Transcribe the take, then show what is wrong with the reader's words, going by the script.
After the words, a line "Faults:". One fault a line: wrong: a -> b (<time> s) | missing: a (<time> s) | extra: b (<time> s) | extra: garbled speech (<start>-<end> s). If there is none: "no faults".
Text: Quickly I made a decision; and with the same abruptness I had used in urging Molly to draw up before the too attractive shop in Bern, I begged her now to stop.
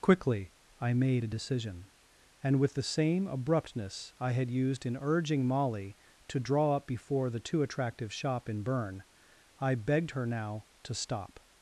Quickly I made a decision; and with the same abruptness I had used in urging Molly to draw up before the too attractive shop in Bern, I begged her now to stop.
Faults:
no faults